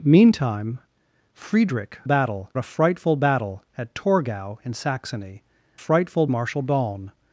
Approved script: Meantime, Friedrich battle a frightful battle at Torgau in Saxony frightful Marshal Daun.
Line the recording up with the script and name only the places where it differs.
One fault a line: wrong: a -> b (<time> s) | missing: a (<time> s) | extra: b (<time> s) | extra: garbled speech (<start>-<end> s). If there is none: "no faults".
no faults